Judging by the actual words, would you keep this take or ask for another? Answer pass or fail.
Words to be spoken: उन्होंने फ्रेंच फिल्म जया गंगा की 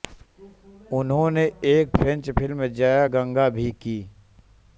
fail